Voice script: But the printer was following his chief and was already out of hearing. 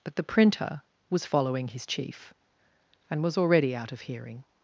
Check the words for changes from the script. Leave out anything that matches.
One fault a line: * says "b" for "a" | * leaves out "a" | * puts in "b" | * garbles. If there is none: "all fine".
all fine